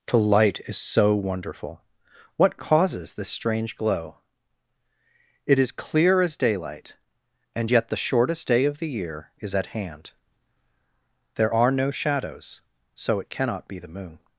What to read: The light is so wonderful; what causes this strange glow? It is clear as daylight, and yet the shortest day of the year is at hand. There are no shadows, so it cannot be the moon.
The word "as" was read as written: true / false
true